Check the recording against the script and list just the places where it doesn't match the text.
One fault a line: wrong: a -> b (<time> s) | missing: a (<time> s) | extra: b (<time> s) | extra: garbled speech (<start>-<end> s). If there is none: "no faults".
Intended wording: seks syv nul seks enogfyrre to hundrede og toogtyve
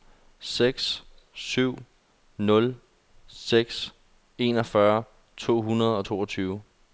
no faults